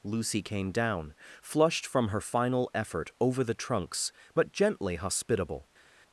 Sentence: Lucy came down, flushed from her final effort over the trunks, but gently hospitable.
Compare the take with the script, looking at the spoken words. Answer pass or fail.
pass